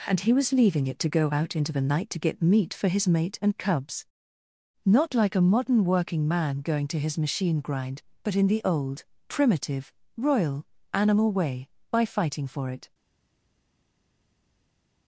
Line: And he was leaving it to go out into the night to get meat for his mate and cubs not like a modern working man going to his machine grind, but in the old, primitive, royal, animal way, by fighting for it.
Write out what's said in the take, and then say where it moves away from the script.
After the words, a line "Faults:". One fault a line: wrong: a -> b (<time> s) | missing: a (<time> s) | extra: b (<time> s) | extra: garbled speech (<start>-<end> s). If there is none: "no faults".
And he was leaving it to go out into the night to get meat for his mate and cubs not like a modern working man going to his machine grind, but in the old, primitive, royal, animal way, by fighting for it.
Faults:
no faults